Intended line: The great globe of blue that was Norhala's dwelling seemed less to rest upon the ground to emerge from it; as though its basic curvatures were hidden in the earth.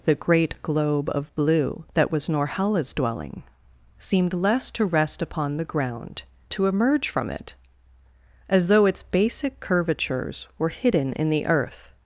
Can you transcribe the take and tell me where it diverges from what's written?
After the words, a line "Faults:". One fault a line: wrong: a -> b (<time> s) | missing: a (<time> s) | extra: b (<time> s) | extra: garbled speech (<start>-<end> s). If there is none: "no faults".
The great globe of blue that was Norhala's dwelling seemed less to rest upon the ground to emerge from it; as though its basic curvatures were hidden in the earth.
Faults:
no faults